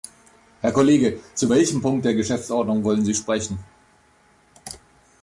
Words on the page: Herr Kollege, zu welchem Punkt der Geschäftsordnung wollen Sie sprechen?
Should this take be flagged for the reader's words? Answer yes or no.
no